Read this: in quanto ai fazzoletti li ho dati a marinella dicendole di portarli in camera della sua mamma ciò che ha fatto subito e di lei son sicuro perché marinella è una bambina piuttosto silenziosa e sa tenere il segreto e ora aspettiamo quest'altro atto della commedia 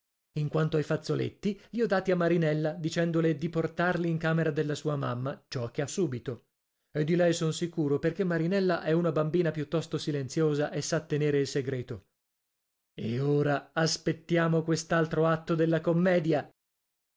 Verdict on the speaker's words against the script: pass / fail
fail